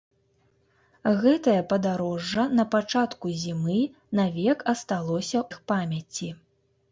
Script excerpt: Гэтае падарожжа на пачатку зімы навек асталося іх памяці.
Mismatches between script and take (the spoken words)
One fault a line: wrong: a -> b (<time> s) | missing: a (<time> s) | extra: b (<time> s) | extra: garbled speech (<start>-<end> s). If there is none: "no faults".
no faults